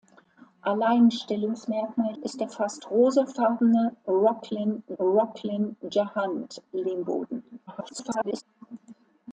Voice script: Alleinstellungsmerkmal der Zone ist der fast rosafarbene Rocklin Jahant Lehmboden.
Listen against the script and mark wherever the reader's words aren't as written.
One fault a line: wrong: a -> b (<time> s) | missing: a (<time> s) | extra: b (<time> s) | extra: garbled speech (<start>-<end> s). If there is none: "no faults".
missing: der Zone (2.1 s)
extra: Rocklin (5.0 s)
extra: garbled speech (7.7-8.4 s)